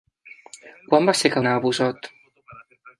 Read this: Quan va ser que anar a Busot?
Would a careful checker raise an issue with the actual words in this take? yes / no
no